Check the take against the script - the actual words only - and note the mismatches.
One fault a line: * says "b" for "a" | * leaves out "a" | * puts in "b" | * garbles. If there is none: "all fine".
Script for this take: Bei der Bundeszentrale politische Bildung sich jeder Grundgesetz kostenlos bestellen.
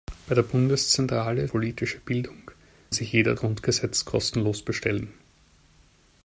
all fine